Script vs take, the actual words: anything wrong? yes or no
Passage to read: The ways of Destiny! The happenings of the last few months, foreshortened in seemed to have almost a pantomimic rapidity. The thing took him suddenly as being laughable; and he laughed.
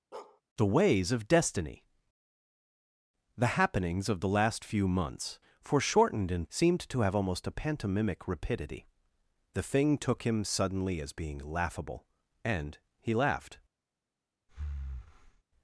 no